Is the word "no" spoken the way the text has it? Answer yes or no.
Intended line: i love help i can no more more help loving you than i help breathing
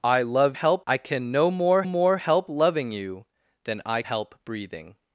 yes